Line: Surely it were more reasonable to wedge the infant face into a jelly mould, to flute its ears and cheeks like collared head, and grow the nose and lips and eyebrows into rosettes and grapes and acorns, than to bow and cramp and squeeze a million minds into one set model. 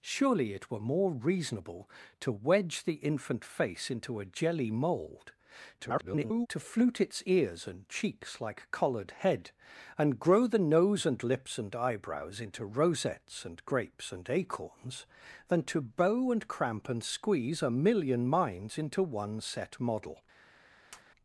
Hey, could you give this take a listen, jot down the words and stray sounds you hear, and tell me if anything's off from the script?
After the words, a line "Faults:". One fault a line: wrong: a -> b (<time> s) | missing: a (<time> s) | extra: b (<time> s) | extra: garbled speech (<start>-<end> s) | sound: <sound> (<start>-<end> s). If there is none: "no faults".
Surely it were more reasonable to wedge the infant face into a jelly mould, [garbled] to flute its ears and cheeks like collared head, and grow the nose and lips and eyebrows into rosettes and grapes and acorns, than to bow and cramp and squeeze a million minds into one set model.
Faults:
extra: garbled speech (5.8-6.5 s)
sound: tap (20.9-21.0 s)